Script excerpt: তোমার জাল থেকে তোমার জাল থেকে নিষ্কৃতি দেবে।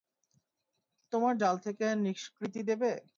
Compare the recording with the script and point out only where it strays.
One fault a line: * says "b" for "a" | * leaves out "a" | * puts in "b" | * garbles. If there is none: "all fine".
* leaves out "তোমার জাল থেকে"